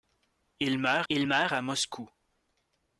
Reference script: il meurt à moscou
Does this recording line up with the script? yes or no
no